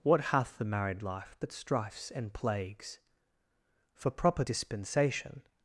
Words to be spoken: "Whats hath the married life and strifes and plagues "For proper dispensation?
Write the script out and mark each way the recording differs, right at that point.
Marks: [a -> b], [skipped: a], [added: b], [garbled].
["Whats -> What] hath the married life [and -> but] strifes and plagues "For proper dispensation?